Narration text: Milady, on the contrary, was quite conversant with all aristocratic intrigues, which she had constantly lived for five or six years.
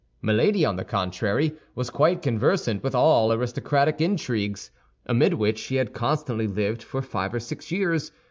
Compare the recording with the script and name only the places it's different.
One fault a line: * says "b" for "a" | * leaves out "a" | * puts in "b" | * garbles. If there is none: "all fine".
* puts in "amid"